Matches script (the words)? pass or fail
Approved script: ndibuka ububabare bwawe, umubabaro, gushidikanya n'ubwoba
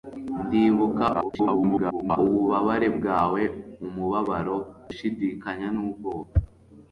fail